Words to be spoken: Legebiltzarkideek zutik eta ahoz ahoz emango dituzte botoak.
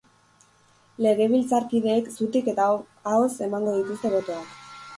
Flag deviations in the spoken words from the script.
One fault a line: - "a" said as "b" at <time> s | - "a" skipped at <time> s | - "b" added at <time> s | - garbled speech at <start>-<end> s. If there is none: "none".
- "ahoz" skipped at 3.3 s